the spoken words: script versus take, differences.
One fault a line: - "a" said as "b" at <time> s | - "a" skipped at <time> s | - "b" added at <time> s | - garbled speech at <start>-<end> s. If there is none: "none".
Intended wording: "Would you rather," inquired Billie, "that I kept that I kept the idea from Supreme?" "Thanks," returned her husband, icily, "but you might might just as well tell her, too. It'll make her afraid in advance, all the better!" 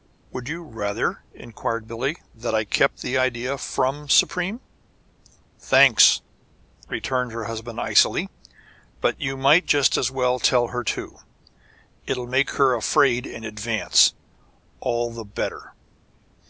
- "that I kept" skipped at 3.0 s
- "might" skipped at 9.7 s